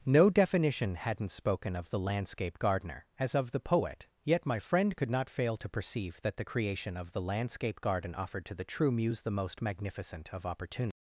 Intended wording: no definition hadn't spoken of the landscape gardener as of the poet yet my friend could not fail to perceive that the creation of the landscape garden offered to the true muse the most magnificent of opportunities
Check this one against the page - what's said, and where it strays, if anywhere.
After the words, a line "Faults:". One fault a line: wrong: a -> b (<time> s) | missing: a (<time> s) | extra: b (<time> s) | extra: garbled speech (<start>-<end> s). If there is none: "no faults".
no definition hadn't spoken of the landscape gardener as of the poet yet my friend could not fail to perceive that the creation of the landscape garden offered to the true muse the most magnificent of opportunities
Faults:
no faults